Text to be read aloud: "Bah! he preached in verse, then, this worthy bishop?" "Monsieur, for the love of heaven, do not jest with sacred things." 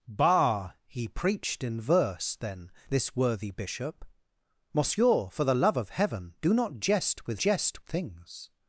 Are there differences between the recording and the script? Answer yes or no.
yes